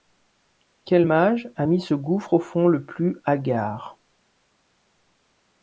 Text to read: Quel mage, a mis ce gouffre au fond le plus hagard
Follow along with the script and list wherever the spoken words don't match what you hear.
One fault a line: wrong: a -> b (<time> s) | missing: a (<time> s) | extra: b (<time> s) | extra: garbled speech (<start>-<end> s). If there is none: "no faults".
no faults